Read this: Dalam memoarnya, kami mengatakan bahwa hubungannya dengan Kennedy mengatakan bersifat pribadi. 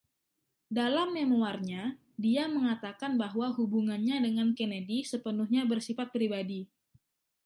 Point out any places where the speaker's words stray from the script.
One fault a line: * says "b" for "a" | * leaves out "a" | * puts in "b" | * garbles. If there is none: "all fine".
* says "dia" for "kami"
* says "sepenuhnya" for "mengatakan"